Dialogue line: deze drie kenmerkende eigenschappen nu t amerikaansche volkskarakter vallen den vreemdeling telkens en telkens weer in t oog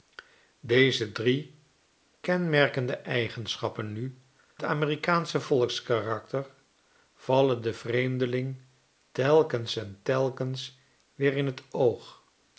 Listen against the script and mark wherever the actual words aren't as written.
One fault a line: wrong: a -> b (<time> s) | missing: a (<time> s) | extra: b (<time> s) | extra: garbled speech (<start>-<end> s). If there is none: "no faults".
no faults